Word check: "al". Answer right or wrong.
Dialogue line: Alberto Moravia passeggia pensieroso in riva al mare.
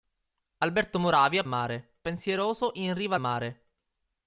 wrong